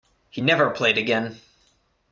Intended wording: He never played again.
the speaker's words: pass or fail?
pass